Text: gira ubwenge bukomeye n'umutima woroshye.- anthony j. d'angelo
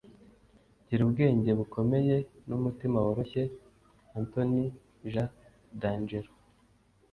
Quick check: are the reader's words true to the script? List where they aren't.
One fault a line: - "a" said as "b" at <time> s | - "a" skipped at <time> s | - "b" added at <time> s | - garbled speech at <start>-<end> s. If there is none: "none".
none